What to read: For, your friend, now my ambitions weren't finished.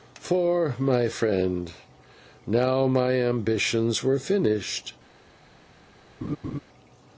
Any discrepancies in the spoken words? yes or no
yes